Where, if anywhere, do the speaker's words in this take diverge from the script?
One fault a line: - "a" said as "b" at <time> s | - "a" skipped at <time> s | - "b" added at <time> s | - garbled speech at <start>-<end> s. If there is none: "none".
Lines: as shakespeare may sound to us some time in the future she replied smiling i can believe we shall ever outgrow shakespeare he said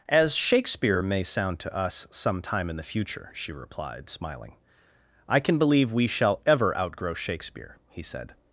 none